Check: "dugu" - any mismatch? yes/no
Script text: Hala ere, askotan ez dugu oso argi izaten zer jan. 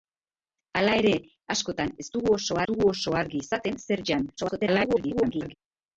no